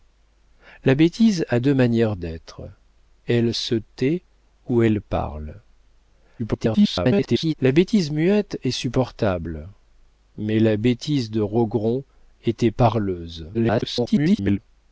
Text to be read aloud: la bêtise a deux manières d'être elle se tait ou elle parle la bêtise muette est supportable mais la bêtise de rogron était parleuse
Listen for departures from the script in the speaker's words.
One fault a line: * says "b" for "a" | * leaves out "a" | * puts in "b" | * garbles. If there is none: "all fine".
* garbles
* garbles